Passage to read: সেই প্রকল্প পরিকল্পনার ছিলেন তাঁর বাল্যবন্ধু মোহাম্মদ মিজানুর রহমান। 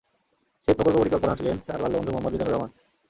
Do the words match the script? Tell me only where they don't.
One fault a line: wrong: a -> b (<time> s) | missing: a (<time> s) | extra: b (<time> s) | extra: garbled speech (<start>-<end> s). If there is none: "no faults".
no faults